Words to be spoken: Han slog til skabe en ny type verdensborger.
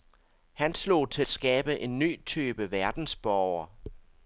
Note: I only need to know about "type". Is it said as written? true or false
true